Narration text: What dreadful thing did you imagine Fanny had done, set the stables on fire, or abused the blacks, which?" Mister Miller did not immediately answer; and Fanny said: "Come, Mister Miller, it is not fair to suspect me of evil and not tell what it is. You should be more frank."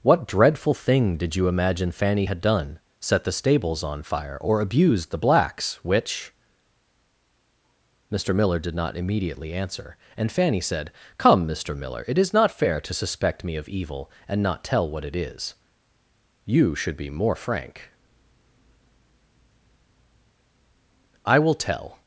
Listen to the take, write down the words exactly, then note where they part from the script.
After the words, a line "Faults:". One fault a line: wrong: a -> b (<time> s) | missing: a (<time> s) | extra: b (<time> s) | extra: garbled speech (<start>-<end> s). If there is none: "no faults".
What dreadful thing did you imagine Fanny had done, set the stables on fire, or abused the blacks, which?" Mister Miller did not immediately answer; and Fanny said: "Come, Mister Miller, it is not fair to suspect me of evil and not tell what it is. You should be more frank." "I will tell
Faults:
extra: I will tell (21.3 s)